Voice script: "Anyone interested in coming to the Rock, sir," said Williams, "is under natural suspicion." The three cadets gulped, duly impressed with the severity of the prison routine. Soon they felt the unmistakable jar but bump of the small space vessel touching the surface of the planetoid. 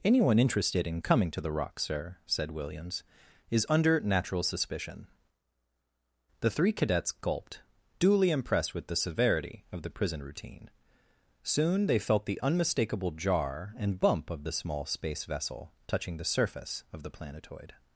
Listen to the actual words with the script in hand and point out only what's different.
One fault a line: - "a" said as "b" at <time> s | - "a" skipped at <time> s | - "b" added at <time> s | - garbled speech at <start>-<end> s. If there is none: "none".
- "but" said as "and" at 13.8 s